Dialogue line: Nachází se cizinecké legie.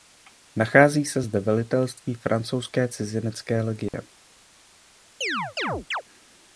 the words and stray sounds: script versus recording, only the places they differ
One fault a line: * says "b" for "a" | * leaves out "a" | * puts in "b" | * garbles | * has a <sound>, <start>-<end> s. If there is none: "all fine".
* puts in "zde velitelství Francouzské"
* has a dropout, 3.9-3.9 s
* has a chirp, 5.2-6.0 s